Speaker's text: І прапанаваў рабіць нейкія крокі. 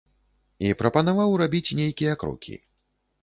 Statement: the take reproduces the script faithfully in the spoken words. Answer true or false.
true